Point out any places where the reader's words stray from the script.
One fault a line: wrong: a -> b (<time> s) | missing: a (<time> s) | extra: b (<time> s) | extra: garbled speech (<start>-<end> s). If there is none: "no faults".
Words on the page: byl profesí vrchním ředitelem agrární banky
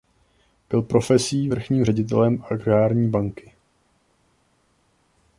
no faults